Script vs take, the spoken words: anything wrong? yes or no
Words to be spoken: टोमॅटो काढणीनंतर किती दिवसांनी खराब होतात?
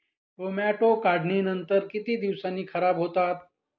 no